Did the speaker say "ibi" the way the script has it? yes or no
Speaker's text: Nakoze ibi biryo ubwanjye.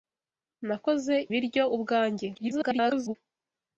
no